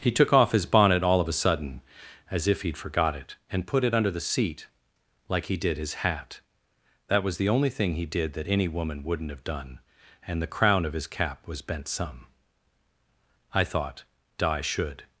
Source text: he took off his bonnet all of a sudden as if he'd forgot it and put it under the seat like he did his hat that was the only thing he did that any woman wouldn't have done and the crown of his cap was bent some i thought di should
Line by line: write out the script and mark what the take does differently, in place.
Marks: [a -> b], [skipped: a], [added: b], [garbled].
he took off his bonnet all of a sudden as if he'd forgot it and put it under the seat like he did his hat that was the only thing he did that any woman wouldn't have done and the crown of his cap was bent some i thought di should